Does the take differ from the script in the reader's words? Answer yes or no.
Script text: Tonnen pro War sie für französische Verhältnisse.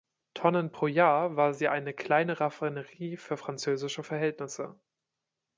yes